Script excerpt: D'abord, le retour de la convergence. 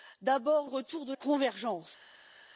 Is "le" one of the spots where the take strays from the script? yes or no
yes